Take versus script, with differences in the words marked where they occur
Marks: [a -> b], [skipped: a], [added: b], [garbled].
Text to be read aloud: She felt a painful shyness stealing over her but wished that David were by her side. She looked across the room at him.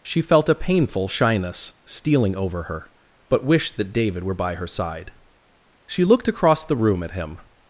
She felt a painful shyness stealing over her but wished that David were by her side. She looked across the room at him.